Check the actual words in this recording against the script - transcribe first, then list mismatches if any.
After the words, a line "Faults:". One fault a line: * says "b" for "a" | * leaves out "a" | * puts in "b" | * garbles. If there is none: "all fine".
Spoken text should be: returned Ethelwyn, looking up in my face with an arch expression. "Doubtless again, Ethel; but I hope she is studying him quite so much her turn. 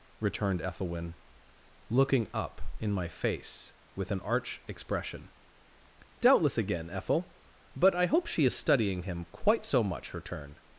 returned Ethelwyn, looking up in my face with an arch expression. "Doubtless again, Ethel; but I hope she is studying him quite so much her turn.
Faults:
all fine